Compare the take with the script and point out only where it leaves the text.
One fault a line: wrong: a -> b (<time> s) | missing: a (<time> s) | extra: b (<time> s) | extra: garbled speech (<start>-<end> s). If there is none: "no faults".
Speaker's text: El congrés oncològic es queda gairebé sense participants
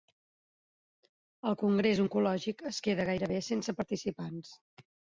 no faults